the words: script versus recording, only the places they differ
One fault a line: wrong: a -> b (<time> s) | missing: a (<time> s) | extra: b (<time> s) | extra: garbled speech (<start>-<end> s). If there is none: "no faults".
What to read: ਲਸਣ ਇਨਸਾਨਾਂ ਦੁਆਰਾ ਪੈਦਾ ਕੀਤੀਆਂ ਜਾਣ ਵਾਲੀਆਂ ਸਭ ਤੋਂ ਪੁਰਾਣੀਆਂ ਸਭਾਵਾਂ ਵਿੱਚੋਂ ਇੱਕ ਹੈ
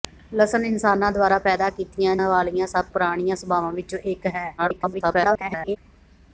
missing: ਜਾਣ (2.1 s)
missing: ਤੋਂ (2.8 s)
extra: garbled speech (4.6-5.8 s)